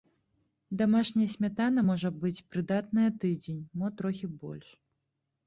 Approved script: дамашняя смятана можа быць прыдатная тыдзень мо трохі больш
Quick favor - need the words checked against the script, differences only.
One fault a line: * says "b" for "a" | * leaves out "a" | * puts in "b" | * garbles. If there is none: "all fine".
all fine